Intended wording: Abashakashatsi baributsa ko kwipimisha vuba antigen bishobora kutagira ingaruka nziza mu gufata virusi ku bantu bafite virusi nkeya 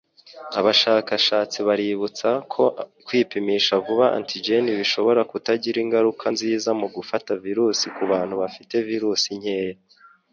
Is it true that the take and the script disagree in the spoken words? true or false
false